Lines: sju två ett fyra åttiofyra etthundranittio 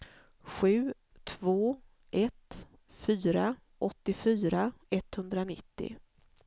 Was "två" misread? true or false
false